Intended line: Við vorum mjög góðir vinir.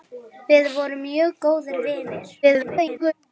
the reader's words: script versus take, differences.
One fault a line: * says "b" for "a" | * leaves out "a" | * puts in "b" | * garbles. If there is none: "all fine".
* garbles